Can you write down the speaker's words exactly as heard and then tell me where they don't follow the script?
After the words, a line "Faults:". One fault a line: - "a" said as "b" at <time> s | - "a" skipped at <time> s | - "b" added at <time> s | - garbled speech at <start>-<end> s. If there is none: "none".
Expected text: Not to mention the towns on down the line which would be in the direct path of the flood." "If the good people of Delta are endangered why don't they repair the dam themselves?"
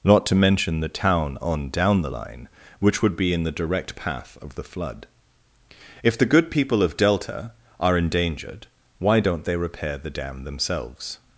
Not to mention the town on down the line which would be in the direct path of the flood." "If the good people of Delta are endangered why don't they repair the dam themselves?"
Faults:
- "towns" said as "town" at 0.9 s